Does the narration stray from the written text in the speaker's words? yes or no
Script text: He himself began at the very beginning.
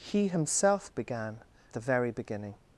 yes